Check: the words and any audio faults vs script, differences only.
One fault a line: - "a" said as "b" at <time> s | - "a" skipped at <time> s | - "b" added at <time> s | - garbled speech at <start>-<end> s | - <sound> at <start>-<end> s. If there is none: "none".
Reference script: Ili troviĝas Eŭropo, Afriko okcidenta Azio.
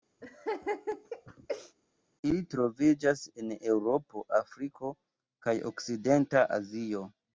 - laugh at 0.2-1.8 s
- "en" added at 3.4 s
- "kaj" added at 5.5 s